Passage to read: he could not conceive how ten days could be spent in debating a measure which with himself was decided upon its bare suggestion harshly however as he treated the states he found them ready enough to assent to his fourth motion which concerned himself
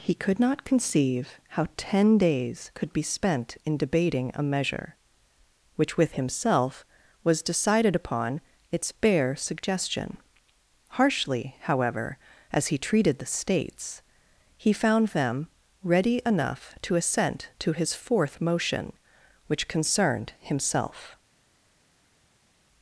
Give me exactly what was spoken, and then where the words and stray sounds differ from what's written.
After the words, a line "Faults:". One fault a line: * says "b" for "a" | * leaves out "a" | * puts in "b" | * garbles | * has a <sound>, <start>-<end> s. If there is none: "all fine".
he could not conceive how ten days could be spent in debating a measure which with himself was decided upon its bare suggestion harshly however as he treated the states he found them ready enough to assent to his fourth motion which concerned himself
Faults:
all fine